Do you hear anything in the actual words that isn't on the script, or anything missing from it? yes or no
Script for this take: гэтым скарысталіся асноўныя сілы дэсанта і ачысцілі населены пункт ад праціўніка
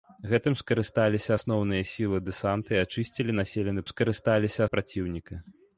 yes